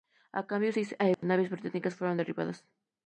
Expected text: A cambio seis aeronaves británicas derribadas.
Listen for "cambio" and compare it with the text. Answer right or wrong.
right